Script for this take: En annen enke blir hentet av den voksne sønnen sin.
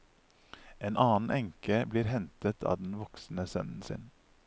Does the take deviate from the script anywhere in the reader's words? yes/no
no